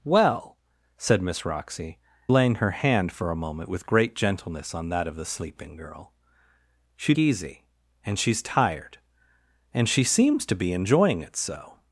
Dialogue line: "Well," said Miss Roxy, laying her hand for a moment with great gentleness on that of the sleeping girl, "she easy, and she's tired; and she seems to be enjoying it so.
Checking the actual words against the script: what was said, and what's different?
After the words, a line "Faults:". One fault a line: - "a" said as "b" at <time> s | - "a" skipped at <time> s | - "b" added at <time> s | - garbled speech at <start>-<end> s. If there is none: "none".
"Well," said Miss Roxy, laying her hand for a moment with great gentleness on that of the sleeping girl, "she easy, and she's tired; and she seems to be enjoying it so.
Faults:
none